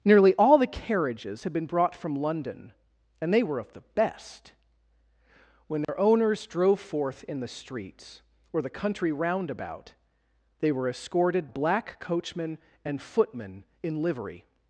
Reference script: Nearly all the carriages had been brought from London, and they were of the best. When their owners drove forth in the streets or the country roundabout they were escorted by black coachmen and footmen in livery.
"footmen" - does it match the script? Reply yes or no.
yes